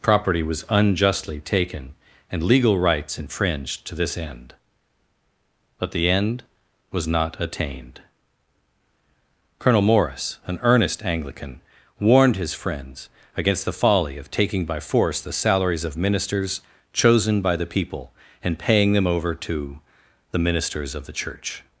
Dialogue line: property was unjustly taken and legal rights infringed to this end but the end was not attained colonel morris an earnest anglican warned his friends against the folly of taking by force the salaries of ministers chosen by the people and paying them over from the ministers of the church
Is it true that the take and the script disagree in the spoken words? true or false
true